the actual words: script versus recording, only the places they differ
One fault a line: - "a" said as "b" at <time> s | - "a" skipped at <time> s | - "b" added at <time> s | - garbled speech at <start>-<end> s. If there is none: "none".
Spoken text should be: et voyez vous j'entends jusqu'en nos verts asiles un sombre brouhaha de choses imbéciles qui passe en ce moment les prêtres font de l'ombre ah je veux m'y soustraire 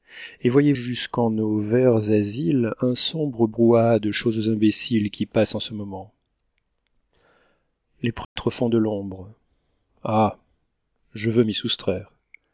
- "vous j'entends" skipped at 0.7 s